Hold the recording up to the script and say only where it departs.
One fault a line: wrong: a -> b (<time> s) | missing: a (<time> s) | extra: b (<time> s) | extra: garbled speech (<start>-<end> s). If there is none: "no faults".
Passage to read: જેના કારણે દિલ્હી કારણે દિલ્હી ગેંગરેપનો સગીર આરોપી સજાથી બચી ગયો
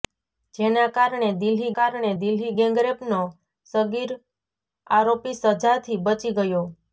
no faults